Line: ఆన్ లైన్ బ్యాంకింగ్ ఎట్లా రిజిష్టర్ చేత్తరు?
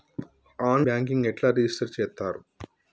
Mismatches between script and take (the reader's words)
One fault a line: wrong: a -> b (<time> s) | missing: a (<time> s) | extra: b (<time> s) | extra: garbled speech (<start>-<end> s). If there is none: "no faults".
missing: లైన్ (0.9 s)